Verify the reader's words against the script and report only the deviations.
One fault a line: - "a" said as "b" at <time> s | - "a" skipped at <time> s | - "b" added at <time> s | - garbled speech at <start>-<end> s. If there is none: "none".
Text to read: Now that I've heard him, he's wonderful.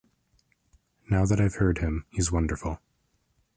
none